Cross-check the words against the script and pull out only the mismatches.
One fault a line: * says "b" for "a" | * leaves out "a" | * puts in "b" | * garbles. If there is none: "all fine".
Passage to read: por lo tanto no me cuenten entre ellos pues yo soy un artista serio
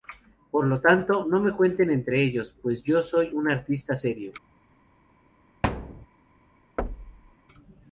all fine